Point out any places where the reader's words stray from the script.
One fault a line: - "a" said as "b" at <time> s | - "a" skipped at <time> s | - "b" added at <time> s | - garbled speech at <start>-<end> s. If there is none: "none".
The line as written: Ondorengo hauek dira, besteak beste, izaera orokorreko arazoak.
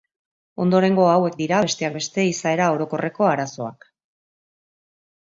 none